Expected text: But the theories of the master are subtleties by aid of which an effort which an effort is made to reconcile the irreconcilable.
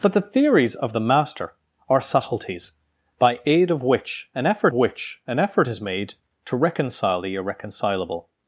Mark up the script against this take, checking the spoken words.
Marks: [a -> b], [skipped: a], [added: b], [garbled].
But the theories of the master are subtleties by aid of which an effort which an effort is made to reconcile the irreconcilable.